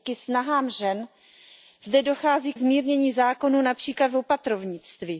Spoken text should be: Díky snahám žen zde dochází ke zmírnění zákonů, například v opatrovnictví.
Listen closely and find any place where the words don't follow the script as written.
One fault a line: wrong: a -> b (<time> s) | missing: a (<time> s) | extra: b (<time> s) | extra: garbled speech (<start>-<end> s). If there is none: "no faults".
missing: ke (2.5 s)